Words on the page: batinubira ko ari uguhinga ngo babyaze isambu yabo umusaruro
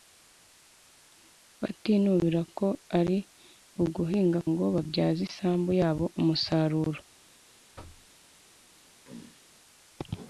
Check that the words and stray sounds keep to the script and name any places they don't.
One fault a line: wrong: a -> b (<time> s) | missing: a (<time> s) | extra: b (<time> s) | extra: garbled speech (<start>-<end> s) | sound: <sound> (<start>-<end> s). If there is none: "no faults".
sound: thud (7.8-8.1 s)
sound: throat clearing (9.0-9.4 s)